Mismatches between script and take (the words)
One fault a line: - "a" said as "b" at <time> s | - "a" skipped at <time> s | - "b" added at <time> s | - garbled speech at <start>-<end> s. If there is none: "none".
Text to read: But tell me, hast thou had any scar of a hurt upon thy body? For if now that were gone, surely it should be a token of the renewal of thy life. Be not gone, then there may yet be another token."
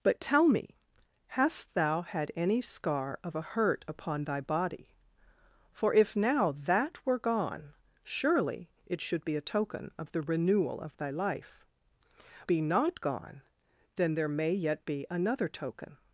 none